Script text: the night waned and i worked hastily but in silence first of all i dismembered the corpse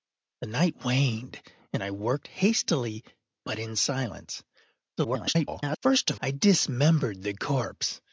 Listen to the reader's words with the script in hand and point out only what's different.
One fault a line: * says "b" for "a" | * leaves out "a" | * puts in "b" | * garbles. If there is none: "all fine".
* garbles
* leaves out "all"